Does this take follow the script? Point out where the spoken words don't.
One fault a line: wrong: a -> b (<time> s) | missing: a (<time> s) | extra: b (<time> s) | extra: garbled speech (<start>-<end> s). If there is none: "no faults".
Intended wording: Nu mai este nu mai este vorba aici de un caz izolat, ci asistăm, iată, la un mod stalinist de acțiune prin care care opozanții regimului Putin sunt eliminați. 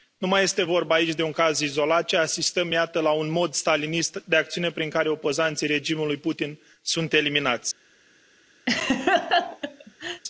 missing: nu mai este (0.6 s)
missing: care (5.1 s)